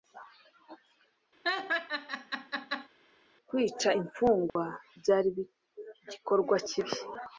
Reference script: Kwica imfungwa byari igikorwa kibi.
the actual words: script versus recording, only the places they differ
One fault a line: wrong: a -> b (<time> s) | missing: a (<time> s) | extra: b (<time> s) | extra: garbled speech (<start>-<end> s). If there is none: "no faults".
no faults